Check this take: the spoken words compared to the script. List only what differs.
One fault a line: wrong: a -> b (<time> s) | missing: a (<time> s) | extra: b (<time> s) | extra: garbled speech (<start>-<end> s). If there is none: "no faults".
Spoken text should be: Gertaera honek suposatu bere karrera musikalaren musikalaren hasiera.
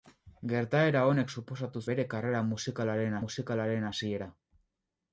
no faults